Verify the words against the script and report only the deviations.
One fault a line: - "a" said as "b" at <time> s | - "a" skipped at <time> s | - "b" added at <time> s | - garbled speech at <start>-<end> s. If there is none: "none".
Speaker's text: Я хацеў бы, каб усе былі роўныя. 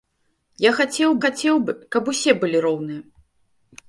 - "хацеў" added at 1.2 s